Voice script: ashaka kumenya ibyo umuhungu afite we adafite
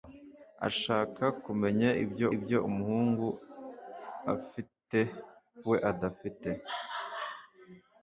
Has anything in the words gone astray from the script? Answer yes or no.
yes